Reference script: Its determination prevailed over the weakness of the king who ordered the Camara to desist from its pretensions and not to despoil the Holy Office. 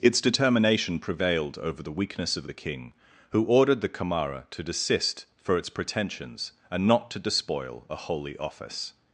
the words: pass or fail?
fail